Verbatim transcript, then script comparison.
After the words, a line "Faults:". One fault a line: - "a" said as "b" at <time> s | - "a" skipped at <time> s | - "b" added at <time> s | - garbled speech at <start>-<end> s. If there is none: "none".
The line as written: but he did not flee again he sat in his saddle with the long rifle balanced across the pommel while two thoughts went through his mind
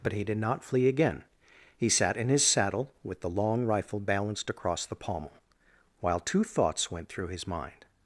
but he did not flee again he sat in his saddle with the long rifle balanced across the pommel while two thoughts went through his mind
Faults:
none